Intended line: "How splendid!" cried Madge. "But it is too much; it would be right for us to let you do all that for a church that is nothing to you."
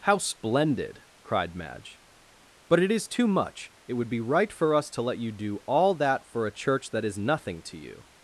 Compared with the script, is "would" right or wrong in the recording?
right